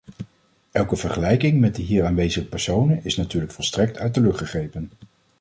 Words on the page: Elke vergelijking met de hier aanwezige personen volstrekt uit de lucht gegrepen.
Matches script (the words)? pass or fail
fail